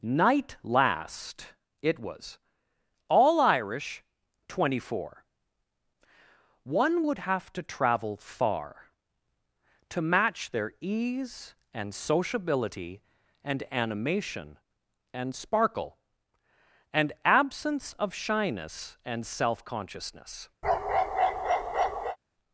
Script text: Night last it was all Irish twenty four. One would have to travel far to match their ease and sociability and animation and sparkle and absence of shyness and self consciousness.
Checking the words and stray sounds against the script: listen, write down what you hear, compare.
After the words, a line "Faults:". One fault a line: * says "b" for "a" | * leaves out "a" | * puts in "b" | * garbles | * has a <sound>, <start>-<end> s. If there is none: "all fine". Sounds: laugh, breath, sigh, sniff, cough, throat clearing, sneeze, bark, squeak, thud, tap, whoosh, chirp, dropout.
Night last it was all Irish twenty four. One would have to travel far to match their ease and sociability and animation and sparkle and absence of shyness and self consciousness.
Faults:
* has a bark, 20.6-22.2 s